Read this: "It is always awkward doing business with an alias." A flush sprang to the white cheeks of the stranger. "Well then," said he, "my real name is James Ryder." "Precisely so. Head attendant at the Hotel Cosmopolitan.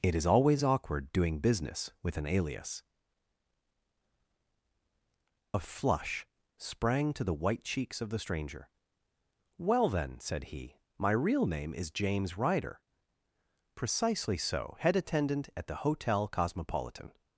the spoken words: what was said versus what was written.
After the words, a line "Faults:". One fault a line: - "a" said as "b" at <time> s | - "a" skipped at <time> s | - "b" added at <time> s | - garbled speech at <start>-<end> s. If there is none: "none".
"It is always awkward doing business with an alias." A flush sprang to the white cheeks of the stranger. "Well then," said he, "my real name is James Ryder." "Precisely so. Head attendant at the Hotel Cosmopolitan.
Faults:
none